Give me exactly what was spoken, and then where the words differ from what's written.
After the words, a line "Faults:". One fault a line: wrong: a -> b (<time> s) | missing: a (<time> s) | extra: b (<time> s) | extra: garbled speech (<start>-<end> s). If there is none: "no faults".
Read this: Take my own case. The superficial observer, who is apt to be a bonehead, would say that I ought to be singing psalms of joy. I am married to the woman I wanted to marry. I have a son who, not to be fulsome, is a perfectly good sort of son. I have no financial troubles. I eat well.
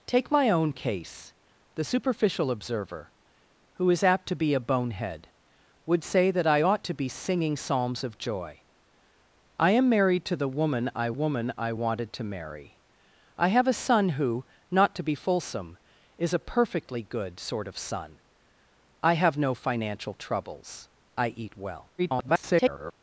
Take my own case. The superficial observer, who is apt to be a bonehead, would say that I ought to be singing psalms of joy. I am married to the woman I woman I wanted to marry. I have a son who, not to be fulsome, is a perfectly good sort of son. I have no financial troubles. I eat well. [garbled]
Faults:
extra: woman I (11.1 s)
extra: garbled speech (22.0-22.9 s)